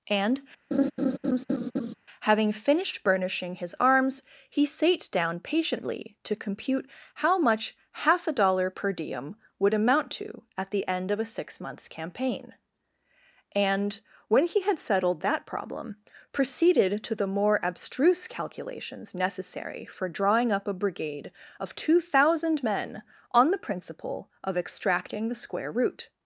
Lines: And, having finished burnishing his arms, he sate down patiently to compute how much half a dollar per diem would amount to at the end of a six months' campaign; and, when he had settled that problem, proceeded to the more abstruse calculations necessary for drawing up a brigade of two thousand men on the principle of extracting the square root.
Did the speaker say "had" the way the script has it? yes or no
yes